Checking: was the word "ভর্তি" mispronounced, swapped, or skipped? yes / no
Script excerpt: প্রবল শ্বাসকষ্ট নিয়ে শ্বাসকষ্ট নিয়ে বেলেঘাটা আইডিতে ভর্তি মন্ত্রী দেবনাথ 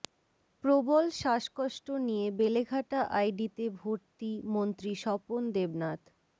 no